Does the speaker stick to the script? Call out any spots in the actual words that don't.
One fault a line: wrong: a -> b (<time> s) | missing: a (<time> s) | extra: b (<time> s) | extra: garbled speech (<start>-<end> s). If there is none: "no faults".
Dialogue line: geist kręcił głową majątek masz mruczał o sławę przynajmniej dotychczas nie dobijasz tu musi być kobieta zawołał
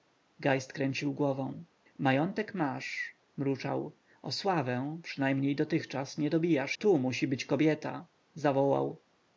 no faults